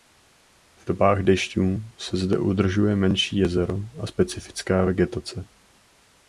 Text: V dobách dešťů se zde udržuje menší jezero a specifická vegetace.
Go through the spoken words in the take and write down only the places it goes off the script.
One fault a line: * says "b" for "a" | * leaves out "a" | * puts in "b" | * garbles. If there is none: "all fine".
all fine